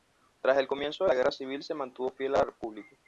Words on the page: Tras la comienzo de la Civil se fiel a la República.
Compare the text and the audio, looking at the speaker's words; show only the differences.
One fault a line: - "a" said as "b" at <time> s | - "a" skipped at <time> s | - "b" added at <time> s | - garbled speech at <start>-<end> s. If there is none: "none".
- "la" said as "el" at 0.6 s
- "Guerra" added at 1.1 s
- "mantuvo" added at 1.7 s